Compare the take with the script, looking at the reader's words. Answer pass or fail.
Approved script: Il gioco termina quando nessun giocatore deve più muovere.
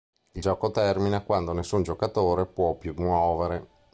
fail